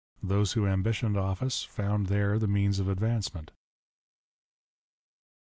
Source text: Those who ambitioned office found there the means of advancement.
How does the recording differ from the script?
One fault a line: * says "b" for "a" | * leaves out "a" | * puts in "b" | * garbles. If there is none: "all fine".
all fine